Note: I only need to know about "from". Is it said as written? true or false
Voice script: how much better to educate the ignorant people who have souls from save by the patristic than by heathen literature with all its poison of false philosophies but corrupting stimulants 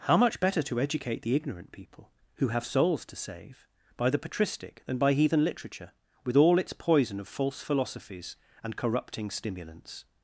false